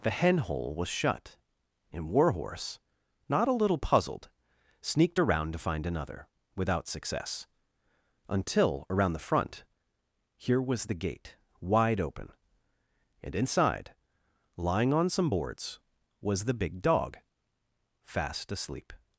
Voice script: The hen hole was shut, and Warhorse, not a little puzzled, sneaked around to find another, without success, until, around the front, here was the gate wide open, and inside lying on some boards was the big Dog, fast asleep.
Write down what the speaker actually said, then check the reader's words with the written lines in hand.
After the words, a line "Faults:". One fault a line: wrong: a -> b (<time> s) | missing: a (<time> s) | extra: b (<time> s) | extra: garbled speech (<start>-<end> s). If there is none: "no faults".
The hen hole was shut, and Warhorse, not a little puzzled, sneaked around to find another, without success, until, around the front, here was the gate wide open, and inside lying on some boards was the big Dog, fast asleep.
Faults:
no faults